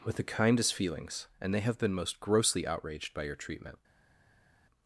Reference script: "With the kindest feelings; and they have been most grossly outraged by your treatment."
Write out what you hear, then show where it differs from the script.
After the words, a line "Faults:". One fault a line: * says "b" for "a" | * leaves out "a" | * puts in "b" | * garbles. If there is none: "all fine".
"With the kindest feelings; and they have been most grossly outraged by your treatment."
Faults:
all fine